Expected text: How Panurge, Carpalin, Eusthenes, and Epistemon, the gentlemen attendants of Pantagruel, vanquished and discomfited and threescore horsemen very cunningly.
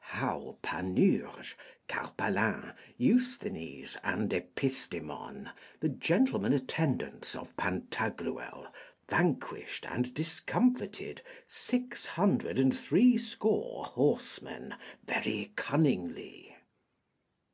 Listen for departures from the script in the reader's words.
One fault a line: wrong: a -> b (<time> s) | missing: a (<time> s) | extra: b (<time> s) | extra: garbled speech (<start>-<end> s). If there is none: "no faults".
extra: six hundred (11.5 s)